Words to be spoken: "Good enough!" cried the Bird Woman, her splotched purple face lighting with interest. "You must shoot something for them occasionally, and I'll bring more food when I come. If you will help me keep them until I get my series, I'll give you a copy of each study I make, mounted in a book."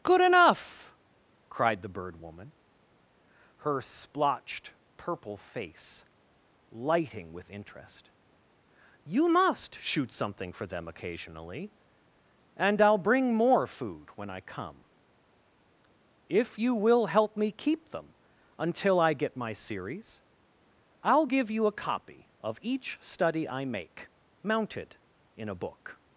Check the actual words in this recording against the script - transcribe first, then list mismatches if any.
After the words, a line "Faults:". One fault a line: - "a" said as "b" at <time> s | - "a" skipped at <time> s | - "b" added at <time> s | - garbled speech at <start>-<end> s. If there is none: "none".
"Good enough!" cried the Bird Woman, her splotched purple face lighting with interest. "You must shoot something for them occasionally, and I'll bring more food when I come. If you will help me keep them until I get my series, I'll give you a copy of each study I make, mounted in a book."
Faults:
none